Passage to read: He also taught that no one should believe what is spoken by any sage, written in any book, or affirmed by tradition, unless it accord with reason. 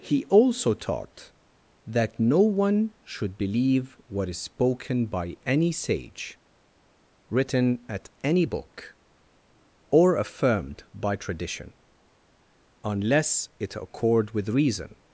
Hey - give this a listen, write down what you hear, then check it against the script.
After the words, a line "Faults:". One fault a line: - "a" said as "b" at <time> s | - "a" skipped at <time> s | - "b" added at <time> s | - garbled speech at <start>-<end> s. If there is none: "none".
He also taught that no one should believe what is spoken by any sage, written at any book, or affirmed by tradition, unless it accord with reason.
Faults:
- "in" said as "at" at 7.9 s